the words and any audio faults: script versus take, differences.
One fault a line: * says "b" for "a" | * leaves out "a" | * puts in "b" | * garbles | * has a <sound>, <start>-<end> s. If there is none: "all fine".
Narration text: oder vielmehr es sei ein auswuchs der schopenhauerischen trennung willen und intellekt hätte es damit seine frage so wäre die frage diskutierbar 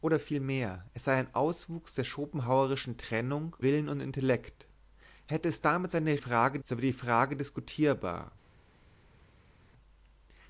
all fine